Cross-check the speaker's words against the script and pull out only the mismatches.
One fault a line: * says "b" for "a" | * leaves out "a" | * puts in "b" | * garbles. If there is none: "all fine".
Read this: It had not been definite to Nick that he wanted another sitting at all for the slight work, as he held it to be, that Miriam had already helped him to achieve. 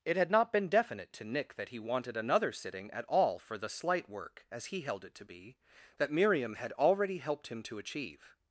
all fine